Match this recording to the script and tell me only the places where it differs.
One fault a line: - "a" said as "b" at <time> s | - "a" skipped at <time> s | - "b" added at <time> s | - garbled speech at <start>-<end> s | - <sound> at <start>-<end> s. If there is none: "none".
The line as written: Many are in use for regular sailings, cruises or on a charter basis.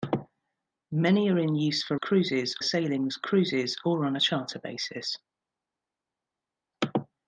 - "regular" said as "cruises" at 1.9 s